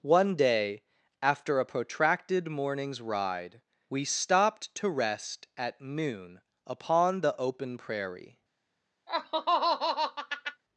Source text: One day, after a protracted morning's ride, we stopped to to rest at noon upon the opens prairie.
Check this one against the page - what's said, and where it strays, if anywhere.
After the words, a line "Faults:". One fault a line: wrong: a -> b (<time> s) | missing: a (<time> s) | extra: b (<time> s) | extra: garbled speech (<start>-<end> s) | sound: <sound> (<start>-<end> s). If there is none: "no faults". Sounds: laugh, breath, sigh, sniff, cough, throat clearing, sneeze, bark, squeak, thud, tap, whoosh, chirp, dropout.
One day, after a protracted morning's ride, we stopped to rest at noon upon the open prairie.
Faults:
missing: to (4.9 s)
wrong: opens -> open (7.4 s)
sound: laugh (9.1-10.6 s)